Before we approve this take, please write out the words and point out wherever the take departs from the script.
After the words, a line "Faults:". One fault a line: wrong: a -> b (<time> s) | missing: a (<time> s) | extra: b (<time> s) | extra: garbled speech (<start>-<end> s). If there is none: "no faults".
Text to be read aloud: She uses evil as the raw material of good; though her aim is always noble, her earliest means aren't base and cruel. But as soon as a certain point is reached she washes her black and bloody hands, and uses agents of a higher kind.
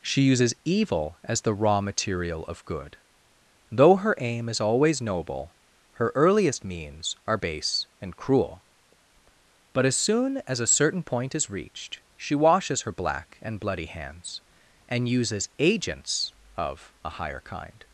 She uses evil as the raw material of good; though her aim is always noble, her earliest means are base and cruel. But as soon as a certain point is reached she washes her black and bloody hands, and uses agents of a higher kind.
Faults:
wrong: aren't -> are (7.3 s)